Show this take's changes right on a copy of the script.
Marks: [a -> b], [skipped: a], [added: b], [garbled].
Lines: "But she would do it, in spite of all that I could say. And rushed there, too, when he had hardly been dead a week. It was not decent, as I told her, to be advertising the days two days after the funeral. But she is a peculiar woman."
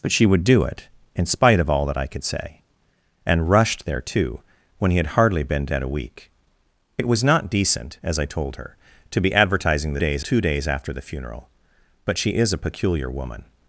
"But she would do it, in spite of all that I could say. And rushed there, too, when he had hardly been dead a week. It was not decent, as I told her, to be advertising the days two days after the funeral. But she is a peculiar woman."